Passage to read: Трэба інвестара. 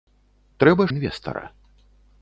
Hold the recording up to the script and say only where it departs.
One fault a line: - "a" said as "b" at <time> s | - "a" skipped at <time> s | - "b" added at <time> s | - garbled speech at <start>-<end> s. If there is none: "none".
none